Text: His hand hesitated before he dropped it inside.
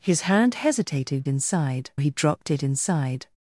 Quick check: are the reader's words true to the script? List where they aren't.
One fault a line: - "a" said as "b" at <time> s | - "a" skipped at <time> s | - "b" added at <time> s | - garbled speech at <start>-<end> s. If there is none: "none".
- "before" said as "inside" at 1.3 s